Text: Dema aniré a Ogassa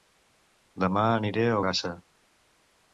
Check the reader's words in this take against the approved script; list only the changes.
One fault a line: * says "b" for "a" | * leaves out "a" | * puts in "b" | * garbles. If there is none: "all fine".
all fine